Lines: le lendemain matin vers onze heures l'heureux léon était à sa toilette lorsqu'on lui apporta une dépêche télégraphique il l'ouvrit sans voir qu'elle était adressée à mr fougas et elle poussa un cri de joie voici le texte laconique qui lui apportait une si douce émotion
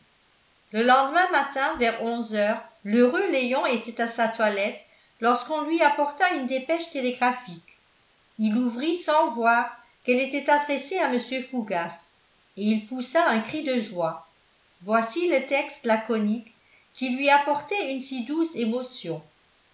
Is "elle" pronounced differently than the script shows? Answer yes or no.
yes